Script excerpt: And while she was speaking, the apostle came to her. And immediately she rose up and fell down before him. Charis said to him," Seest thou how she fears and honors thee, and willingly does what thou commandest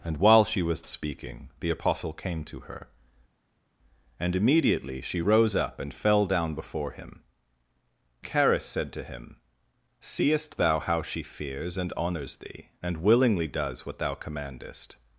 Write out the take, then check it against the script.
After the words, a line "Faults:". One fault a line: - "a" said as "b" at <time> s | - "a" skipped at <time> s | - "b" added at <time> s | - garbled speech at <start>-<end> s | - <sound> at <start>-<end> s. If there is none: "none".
And while she was speaking, the apostle came to her. And immediately she rose up and fell down before him. Charis said to him," Seest thou how she fears and honors thee, and willingly does what thou commandest
Faults:
none